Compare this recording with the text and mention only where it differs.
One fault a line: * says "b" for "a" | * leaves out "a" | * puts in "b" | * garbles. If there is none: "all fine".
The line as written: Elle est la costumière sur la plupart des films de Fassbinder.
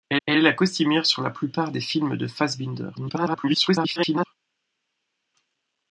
* puts in "elle"
* garbles